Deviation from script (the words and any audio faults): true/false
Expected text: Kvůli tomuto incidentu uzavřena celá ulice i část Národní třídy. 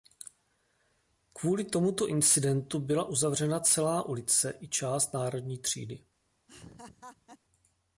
true